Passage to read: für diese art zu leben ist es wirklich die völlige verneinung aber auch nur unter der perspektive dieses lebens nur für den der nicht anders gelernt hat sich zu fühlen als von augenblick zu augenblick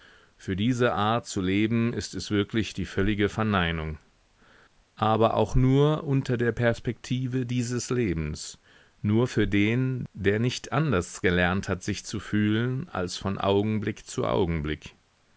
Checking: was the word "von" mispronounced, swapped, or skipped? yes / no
no